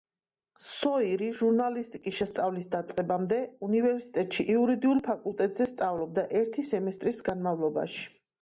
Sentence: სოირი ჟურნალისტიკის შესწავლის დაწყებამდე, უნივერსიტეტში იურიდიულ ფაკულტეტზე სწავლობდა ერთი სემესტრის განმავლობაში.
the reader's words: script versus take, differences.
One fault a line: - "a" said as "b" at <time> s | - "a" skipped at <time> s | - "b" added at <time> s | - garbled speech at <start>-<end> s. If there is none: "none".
none